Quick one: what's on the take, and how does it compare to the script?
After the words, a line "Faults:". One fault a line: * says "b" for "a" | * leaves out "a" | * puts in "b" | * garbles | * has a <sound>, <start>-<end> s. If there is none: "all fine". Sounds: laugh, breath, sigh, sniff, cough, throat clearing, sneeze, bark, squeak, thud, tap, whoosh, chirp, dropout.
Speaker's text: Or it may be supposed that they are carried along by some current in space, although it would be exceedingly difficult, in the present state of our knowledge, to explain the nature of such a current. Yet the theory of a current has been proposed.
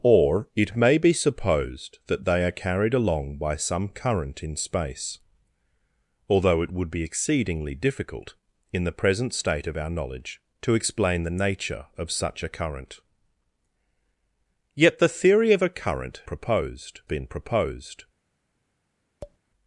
Or it may be supposed that they are carried along by some current in space, although it would be exceedingly difficult, in the present state of our knowledge, to explain the nature of such a current. Yet the theory of a current proposed been proposed.
Faults:
* says "proposed" for "has"
* has a tap, 19.2-19.4 s